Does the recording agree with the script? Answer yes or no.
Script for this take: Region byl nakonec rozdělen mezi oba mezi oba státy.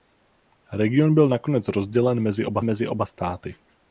yes